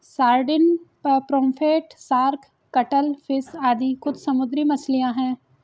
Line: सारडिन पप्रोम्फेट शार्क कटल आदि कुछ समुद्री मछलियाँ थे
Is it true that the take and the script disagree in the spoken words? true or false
true